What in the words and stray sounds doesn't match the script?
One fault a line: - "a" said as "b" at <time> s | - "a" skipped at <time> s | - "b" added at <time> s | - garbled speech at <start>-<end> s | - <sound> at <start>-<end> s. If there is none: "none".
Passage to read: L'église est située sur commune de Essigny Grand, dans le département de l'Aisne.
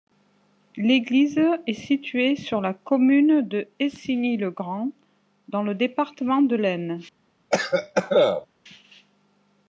- "la" added at 2.6 s
- "le" added at 4.3 s
- cough at 7.5-8.5 s